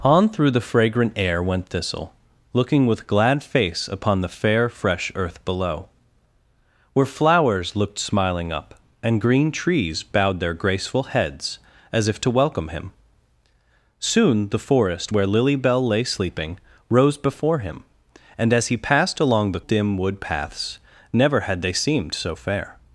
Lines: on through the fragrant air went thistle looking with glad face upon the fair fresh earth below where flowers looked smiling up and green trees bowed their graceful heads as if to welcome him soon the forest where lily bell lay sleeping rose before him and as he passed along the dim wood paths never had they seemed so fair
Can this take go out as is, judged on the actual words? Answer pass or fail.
pass